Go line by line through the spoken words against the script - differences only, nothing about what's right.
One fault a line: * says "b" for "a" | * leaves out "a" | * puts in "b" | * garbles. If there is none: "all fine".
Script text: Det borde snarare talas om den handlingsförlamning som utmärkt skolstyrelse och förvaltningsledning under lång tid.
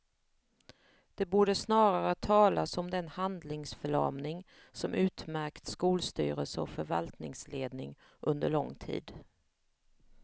all fine